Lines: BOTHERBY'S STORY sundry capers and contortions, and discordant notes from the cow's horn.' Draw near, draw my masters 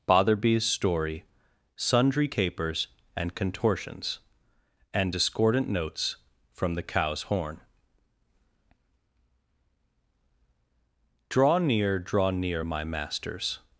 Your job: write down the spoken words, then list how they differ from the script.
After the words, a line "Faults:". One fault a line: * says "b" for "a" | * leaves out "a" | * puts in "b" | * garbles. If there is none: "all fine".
BOTHERBY'S STORY sundry capers and contortions, and discordant notes from the cow's horn.' Draw near, draw near, my masters
Faults:
* puts in "near"